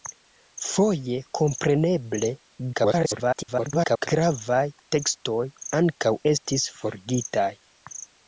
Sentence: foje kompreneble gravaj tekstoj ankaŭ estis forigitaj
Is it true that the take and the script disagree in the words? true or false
true